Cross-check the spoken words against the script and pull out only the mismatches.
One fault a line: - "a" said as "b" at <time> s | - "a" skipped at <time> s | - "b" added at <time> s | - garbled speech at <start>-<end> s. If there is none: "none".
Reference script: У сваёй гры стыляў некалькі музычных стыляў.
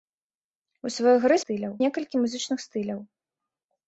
none